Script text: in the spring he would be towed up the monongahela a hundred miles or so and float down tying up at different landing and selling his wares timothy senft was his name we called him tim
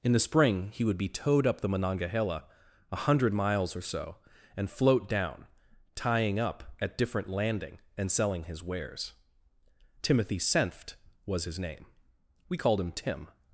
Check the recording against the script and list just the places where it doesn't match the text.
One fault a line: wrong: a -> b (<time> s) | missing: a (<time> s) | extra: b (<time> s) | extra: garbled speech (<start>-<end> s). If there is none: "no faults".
no faults